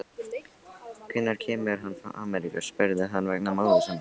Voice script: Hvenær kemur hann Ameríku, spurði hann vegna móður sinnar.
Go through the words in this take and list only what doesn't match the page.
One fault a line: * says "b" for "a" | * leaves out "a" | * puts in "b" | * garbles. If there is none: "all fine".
* puts in "frá"